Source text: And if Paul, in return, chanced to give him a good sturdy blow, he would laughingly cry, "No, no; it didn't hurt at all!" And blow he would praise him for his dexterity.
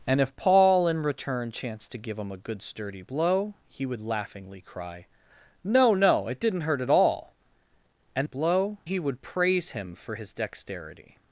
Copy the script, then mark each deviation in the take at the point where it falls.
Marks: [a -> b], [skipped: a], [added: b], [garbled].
And if Paul, in return, chanced to give him a good sturdy blow, he would laughingly cry, "No, no; it didn't hurt at all!" And blow he would praise him for his dexterity.